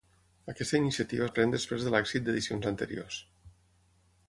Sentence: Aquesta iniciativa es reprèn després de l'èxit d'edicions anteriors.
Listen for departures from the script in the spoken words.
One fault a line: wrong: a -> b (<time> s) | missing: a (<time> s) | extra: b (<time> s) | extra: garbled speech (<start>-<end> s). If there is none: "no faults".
missing: es (1.3 s)